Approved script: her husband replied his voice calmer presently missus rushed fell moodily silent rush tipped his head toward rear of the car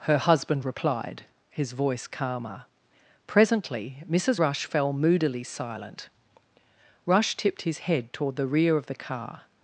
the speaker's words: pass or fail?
fail